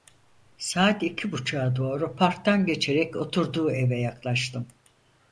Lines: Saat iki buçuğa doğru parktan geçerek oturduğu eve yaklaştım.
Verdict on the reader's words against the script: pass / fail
pass